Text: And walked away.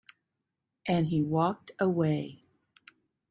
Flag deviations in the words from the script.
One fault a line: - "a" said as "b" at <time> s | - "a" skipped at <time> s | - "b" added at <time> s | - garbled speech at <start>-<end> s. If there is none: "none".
- "he" added at 1.1 s